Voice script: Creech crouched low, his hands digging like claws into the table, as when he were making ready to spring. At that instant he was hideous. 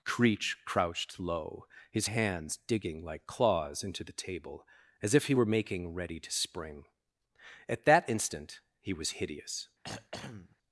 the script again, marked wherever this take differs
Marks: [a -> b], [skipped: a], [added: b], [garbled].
Creech crouched low, his hands digging like claws into the table, as [when -> if] he were making ready to spring. At that instant he was hideous.